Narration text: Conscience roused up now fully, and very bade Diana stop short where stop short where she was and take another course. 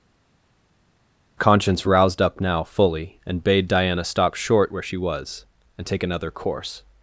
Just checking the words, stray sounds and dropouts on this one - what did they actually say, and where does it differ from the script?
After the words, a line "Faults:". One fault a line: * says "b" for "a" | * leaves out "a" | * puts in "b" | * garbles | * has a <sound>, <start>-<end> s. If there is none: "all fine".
Conscience roused up now fully, and bade Diana stop short where she was and take another course.
Faults:
* leaves out "very"
* leaves out "stop short where"